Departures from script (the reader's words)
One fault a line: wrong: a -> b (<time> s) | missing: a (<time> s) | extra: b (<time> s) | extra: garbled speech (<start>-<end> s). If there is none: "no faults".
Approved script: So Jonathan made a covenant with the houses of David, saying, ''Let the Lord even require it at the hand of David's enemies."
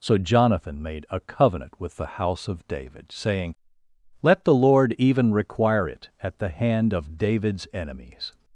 wrong: houses -> house (2.2 s)